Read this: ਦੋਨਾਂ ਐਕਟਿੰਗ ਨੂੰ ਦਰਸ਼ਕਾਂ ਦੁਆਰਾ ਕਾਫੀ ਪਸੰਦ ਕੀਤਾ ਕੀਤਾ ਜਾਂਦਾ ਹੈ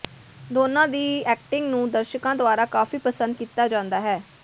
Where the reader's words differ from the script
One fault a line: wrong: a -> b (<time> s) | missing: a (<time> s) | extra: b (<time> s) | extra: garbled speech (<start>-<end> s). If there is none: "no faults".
extra: ਦੀ (0.9 s)
missing: ਕੀਤਾ (3.7 s)